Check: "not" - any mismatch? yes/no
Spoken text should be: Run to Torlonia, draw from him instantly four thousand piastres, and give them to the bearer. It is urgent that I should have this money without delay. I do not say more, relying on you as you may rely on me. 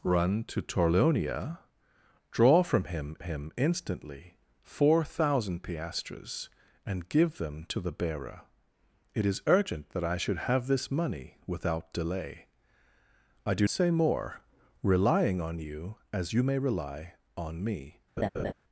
yes